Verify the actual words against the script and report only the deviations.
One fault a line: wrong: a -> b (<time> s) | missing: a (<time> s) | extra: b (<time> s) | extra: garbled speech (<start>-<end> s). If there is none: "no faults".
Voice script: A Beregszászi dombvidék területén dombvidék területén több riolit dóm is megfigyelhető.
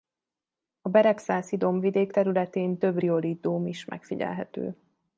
missing: dombvidék területén (2.8 s)